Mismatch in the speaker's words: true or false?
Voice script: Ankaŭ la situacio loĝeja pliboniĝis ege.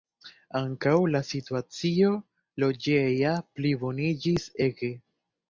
false